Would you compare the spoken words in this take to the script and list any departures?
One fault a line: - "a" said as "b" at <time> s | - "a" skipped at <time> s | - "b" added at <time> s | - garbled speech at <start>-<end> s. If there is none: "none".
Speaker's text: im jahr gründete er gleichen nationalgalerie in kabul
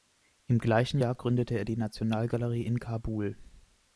- "gleichen" added at 0.6 s
- "gleichen" said as "die" at 1.6 s